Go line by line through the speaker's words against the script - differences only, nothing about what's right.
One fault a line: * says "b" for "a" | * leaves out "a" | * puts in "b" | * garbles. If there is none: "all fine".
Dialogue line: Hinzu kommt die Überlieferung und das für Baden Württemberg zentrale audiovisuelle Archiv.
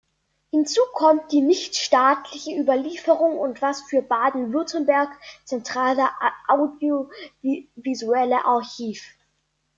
* puts in "nichtstaatliche"